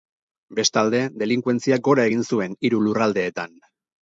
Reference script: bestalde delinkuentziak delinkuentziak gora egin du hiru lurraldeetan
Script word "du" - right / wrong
wrong